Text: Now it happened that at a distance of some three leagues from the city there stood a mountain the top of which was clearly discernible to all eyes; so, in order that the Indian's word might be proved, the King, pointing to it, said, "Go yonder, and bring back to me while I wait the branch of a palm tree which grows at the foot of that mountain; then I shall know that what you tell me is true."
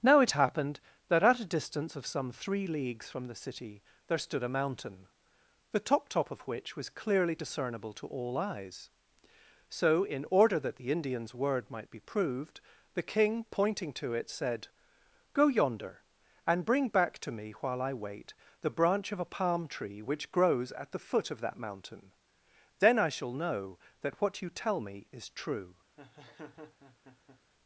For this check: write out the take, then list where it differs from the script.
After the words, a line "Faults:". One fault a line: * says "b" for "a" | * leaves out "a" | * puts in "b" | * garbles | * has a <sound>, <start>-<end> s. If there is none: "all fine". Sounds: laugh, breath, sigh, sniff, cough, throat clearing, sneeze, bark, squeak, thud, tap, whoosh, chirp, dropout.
Now it happened that at a distance of some three leagues from the city there stood a mountain the top top of which was clearly discernible to all eyes; so, in order that the Indian's word might be proved, the King, pointing to it, said, "Go yonder, and bring back to me while I wait the branch of a palm tree which grows at the foot of that mountain; then I shall know that what you tell me is true."
Faults:
* puts in "top"
* has a laugh, 26.0-27.4 s